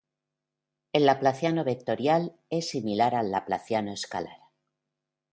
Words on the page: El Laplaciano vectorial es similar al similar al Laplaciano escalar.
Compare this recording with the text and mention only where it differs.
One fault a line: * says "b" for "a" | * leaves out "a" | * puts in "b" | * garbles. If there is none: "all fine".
* leaves out "similar al"